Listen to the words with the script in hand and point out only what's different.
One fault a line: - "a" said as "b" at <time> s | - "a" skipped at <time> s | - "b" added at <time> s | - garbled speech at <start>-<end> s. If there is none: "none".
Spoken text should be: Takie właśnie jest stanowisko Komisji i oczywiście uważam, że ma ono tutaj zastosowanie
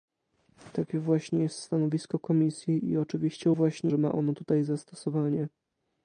- "uważam" said as "właśnie" at 3.5 s